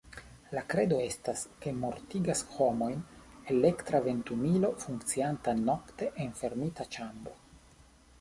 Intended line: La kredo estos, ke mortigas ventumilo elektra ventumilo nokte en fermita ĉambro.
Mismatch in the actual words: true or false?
true